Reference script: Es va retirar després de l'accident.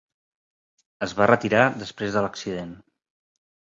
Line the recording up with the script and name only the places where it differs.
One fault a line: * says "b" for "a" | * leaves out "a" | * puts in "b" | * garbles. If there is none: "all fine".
all fine